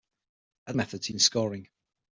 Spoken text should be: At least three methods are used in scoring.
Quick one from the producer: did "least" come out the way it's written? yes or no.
no